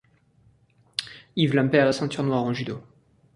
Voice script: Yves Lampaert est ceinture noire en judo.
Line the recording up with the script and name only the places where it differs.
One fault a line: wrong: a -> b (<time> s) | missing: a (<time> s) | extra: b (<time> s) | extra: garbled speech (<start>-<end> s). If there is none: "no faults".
no faults